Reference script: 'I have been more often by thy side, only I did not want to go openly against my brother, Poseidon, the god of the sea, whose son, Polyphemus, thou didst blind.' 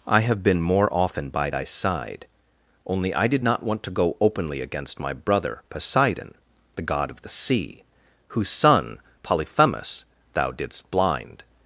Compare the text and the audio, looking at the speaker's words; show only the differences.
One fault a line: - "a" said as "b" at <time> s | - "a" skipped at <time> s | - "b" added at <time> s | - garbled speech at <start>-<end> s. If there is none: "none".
none